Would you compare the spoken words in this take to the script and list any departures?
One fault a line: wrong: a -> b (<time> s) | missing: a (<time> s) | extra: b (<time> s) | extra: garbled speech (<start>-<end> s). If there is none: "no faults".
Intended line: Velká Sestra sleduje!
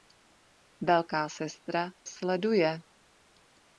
no faults